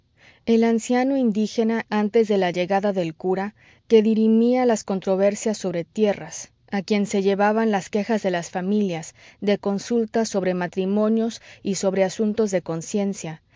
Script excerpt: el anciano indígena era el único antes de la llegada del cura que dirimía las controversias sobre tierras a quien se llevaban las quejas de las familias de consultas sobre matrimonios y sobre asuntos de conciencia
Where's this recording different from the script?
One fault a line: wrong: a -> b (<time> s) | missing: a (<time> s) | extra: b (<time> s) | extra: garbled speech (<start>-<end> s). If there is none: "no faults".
missing: era el único (1.8 s)